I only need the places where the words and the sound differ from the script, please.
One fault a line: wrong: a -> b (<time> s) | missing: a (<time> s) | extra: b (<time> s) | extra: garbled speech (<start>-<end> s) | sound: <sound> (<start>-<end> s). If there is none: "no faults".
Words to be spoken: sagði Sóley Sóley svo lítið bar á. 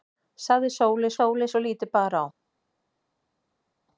no faults